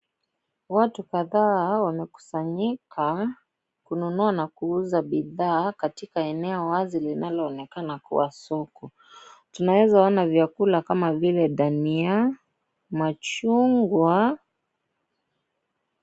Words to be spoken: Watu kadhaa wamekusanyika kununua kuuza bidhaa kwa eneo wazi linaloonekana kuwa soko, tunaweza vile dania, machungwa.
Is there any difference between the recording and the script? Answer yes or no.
yes